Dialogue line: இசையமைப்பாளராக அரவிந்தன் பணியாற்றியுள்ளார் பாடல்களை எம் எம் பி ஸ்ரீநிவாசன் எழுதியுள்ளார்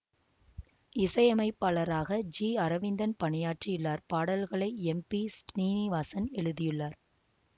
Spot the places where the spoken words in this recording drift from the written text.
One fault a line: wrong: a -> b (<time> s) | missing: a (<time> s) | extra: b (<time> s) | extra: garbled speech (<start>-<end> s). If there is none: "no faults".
extra: ஜி (2.4 s)
missing: எம் (5.0 s)